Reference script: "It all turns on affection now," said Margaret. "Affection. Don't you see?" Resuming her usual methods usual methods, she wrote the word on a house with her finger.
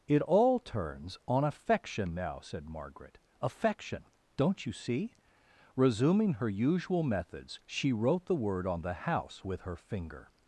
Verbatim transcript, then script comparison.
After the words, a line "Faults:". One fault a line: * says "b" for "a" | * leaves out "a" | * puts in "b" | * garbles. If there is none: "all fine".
"It all turns on affection now," said Margaret. "Affection. Don't you see?" Resuming her usual methods, she wrote the word on the house with her finger.
Faults:
* leaves out "usual methods"
* says "the" for "a"